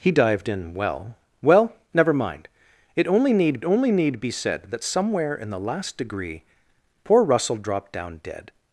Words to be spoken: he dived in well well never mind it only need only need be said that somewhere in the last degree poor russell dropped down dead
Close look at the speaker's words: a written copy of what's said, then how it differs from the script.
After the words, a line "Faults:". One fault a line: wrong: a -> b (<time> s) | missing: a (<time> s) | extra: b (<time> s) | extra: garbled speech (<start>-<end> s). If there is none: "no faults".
he dived in well well never mind it only need only need be said that somewhere in the last degree poor russell dropped down dead
Faults:
no faults